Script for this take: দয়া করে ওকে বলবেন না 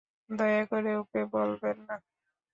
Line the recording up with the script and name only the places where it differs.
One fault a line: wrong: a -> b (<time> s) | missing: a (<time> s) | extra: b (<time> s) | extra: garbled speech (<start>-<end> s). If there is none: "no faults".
no faults